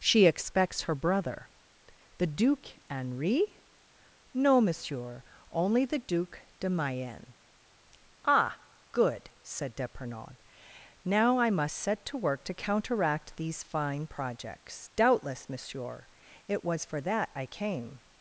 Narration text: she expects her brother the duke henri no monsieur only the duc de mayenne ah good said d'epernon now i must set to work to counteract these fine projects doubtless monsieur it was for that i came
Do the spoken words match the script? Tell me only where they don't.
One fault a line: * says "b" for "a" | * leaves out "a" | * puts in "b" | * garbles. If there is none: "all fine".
all fine